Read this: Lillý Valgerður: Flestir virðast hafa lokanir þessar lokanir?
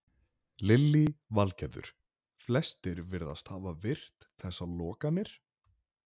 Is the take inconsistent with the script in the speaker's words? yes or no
yes